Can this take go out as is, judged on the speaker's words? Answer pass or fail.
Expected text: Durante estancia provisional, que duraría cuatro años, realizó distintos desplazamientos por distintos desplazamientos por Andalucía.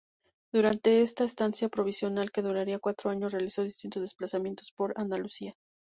fail